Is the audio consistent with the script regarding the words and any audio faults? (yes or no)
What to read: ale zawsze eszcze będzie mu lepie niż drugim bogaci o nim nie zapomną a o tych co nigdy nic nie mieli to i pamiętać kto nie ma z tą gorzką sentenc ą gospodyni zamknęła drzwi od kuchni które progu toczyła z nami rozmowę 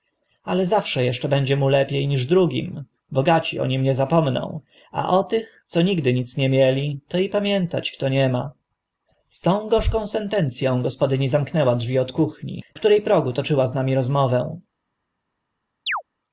no